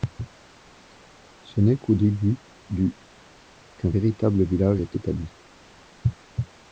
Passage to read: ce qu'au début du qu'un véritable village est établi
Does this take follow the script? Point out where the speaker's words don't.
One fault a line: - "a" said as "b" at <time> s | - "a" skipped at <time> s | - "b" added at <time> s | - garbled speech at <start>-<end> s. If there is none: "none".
- "n'est" added at 1.6 s